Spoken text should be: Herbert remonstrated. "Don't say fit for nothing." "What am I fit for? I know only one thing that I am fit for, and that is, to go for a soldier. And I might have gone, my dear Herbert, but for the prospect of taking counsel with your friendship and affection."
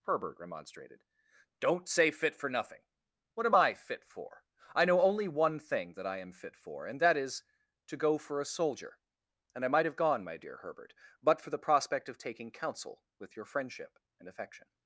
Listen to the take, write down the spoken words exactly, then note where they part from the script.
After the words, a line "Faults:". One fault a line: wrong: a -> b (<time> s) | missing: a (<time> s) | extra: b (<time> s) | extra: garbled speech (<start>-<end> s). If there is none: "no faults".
Herbert remonstrated. "Don't say fit for nothing." "What am I fit for? I know only one thing that I am fit for, and that is, to go for a soldier. And I might have gone, my dear Herbert, but for the prospect of taking counsel with your friendship and affection."
Faults:
no faults